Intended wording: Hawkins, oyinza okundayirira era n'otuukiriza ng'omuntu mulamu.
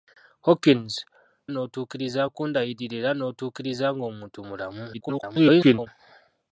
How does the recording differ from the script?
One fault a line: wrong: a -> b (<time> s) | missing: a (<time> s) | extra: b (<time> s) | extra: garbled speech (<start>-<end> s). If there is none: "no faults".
wrong: oyinza -> n'otuukiriza (1.5 s)
extra: garbled speech (4.9-5.9 s)